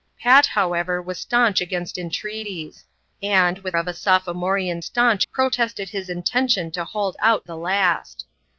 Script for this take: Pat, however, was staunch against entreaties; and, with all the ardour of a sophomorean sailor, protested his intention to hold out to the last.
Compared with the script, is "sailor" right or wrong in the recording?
wrong